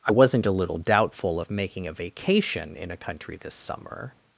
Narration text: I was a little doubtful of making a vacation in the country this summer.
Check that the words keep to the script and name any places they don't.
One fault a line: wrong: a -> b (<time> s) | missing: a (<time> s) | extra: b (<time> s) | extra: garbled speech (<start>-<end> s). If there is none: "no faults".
wrong: was -> wasn't (0.1 s)
wrong: the -> a (2.9 s)